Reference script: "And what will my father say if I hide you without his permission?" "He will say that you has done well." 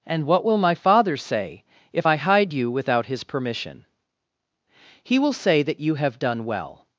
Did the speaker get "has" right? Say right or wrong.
wrong